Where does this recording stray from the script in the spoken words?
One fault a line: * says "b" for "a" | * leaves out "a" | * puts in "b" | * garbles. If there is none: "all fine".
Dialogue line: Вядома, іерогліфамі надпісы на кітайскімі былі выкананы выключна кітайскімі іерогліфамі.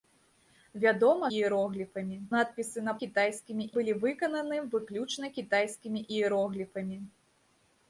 all fine